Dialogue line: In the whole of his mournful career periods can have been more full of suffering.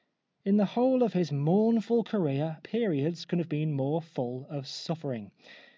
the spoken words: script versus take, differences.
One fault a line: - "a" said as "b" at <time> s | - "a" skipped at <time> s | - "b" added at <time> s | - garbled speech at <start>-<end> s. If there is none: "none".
none